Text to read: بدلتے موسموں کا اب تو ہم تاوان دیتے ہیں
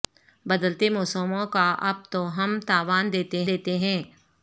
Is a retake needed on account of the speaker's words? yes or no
yes